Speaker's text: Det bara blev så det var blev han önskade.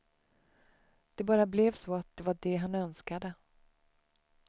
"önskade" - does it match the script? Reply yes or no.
yes